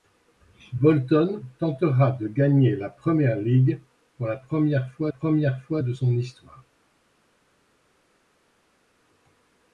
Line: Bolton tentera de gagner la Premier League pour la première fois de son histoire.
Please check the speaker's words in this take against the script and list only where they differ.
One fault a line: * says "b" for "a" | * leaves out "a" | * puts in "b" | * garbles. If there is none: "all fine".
* puts in "première fois"